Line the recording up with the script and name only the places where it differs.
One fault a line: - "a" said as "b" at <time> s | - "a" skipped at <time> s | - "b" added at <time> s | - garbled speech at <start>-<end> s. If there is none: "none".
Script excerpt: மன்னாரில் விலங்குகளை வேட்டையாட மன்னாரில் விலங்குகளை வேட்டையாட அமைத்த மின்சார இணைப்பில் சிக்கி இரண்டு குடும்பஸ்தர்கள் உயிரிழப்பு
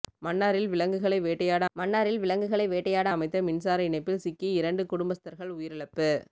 none